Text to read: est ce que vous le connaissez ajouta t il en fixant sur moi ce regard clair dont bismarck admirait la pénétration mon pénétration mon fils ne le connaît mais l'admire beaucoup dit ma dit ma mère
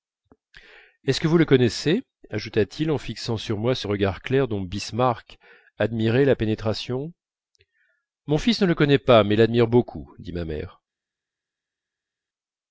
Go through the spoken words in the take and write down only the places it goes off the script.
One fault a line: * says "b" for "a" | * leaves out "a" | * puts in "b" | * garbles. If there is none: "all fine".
* leaves out "pénétration mon"
* puts in "pas"
* leaves out "dit ma"